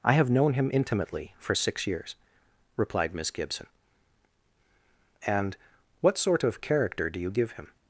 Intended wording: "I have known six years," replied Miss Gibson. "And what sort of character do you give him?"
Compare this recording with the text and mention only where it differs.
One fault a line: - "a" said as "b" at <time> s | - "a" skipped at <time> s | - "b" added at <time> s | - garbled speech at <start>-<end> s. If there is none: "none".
- "him intimately for" added at 0.5 s